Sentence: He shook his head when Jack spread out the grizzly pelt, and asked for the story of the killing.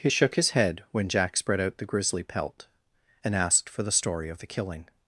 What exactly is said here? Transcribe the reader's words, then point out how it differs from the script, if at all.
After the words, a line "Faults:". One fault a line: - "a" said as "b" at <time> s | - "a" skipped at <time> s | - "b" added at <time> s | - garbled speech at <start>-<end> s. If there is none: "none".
He shook his head when Jack spread out the grizzly pelt, and asked for the story of the killing.
Faults:
none